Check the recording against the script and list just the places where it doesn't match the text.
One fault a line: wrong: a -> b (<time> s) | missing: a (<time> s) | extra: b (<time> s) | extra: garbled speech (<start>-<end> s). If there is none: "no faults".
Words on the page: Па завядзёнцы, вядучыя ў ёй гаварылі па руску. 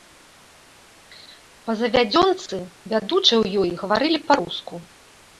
no faults